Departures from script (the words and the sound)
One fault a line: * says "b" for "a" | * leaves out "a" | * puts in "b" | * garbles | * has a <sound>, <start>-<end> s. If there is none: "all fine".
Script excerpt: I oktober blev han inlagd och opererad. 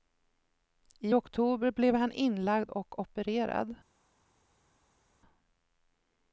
all fine